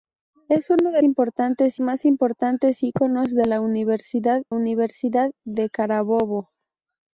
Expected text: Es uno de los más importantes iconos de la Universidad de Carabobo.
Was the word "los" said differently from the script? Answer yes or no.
yes